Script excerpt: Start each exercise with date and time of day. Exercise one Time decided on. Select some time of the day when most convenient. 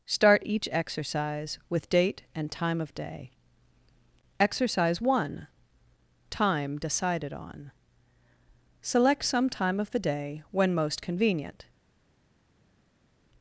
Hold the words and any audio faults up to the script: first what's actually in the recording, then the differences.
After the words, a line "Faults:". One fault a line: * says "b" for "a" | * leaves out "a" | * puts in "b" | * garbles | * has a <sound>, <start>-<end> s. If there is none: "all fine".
Start each exercise with date and time of day. Exercise one Time decided on. Select some time of the day when most convenient.
Faults:
all fine